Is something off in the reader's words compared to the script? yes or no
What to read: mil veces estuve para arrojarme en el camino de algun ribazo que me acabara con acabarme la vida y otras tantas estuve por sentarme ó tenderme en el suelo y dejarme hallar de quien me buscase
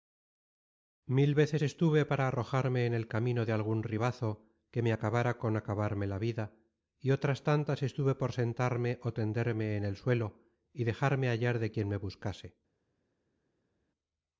no